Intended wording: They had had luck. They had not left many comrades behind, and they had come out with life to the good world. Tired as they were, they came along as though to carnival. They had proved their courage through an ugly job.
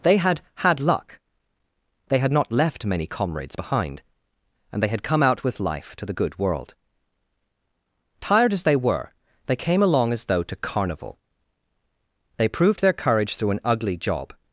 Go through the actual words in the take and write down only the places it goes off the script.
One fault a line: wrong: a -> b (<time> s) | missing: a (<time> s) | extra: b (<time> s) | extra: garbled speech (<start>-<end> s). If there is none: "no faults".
missing: had (12.5 s)